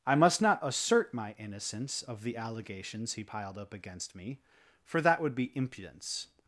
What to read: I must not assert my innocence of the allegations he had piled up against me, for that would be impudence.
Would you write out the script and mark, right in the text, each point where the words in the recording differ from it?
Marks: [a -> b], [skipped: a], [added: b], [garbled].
I must not assert my innocence of the allegations he [skipped: had] piled up against me, for that would be impudence.